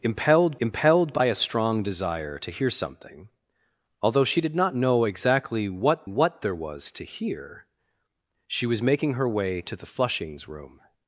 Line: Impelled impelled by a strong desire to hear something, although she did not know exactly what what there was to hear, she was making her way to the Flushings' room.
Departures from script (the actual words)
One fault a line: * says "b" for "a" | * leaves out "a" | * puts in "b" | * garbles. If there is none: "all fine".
all fine